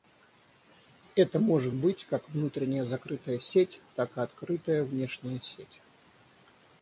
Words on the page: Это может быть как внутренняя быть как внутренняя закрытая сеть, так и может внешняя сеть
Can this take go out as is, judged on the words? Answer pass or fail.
fail